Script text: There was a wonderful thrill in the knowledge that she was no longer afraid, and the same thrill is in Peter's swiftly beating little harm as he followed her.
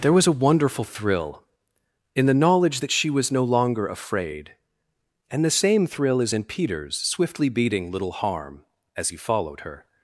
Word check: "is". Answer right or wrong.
right